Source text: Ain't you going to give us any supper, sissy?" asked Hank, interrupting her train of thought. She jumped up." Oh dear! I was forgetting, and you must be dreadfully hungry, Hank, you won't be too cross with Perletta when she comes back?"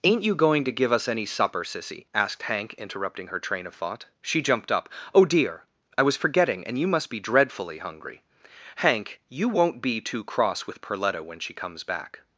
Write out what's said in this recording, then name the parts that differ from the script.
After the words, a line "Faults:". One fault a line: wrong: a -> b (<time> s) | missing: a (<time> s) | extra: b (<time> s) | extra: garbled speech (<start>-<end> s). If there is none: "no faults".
Ain't you going to give us any supper, sissy?" asked Hank, interrupting her train of thought. She jumped up." Oh dear! I was forgetting, and you must be dreadfully hungry, Hank, you won't be too cross with Perletta when she comes back?"
Faults:
no faults